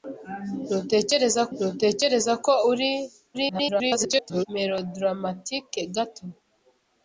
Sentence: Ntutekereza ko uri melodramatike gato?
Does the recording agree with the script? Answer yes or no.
no